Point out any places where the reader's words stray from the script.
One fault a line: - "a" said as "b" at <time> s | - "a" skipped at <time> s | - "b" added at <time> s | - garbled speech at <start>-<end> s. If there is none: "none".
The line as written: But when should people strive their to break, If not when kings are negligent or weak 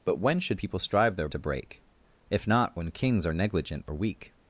none